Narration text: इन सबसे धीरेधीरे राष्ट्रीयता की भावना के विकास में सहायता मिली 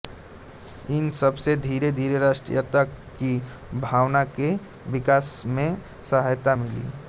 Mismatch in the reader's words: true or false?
false